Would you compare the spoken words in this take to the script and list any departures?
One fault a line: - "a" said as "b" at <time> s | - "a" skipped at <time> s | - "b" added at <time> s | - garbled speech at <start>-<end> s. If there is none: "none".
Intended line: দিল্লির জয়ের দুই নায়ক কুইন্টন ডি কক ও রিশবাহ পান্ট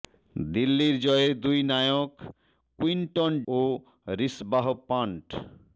- "ডি কক" skipped at 3.3 s